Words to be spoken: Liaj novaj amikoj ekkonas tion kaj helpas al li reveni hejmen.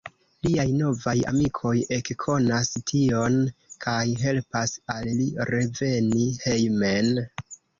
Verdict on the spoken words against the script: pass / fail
pass